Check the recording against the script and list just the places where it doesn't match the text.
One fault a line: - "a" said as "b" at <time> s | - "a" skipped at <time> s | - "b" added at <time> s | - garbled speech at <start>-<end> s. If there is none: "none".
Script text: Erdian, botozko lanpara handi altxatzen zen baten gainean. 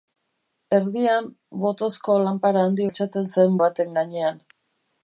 none